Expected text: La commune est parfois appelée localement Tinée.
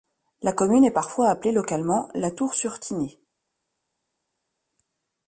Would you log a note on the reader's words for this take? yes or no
yes